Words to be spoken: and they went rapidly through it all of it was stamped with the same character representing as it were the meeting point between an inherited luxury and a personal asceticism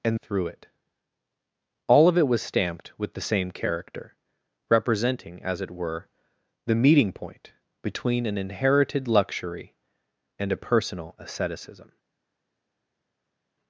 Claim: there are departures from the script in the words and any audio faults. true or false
true